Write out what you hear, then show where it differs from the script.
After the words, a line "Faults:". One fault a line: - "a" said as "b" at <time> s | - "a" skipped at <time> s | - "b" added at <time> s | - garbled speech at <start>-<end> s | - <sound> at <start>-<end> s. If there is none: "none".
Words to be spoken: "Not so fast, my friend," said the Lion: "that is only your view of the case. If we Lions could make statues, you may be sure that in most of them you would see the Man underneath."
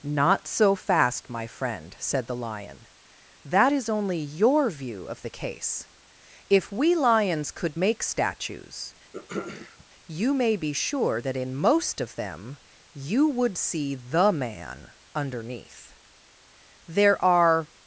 "Not so fast, my friend," said the Lion: "that is only your view of the case. If we Lions could make statues, you may be sure that in most of them you would see the Man underneath." There are
Faults:
- throat clearing at 9.1-9.9 s
- "There are" added at 16.9 s